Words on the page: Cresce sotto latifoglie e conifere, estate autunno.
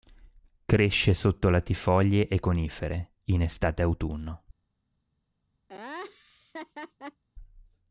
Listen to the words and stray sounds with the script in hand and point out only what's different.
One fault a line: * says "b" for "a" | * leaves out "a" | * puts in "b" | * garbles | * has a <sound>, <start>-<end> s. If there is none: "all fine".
* puts in "in"
* has a laugh, 5.7-7.2 s